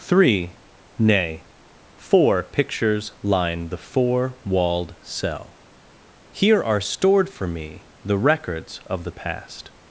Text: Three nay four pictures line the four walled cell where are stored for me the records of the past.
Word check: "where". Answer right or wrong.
wrong